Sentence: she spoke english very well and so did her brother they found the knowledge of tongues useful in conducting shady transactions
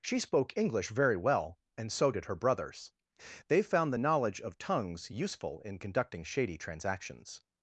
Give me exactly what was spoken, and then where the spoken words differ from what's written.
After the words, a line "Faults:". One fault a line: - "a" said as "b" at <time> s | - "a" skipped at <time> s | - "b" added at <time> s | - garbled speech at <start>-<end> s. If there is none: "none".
she spoke english very well and so did her brothers they found the knowledge of tongues useful in conducting shady transactions
Faults:
- "brother" said as "brothers" at 2.4 s